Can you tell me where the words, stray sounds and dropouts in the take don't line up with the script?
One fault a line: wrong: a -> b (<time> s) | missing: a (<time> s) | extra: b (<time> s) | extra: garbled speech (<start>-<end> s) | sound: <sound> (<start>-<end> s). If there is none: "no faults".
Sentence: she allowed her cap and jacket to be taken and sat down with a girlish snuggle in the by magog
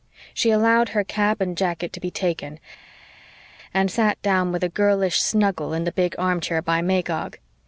extra: big armchair (5.9 s)